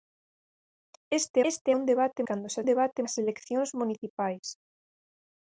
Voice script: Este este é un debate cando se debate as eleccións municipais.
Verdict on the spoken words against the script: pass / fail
pass